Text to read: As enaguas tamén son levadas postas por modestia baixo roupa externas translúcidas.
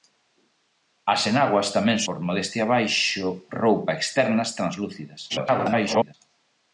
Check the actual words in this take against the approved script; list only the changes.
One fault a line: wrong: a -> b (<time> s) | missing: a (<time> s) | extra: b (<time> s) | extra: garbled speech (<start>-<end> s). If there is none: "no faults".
missing: son levadas postas (2.0 s)
extra: garbled speech (5.3-6.1 s)